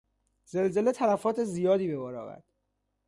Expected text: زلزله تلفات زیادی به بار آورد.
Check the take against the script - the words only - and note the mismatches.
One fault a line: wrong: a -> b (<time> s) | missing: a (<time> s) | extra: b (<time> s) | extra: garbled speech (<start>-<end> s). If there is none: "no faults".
no faults